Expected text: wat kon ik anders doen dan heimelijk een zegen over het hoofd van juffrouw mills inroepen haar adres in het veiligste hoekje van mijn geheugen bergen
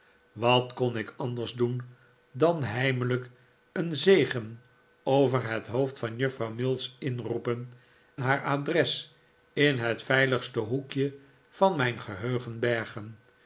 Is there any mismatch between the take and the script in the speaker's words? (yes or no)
no